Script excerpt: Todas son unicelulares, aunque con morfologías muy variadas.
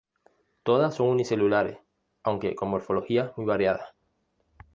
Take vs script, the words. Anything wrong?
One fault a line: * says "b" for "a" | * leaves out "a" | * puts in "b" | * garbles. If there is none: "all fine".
all fine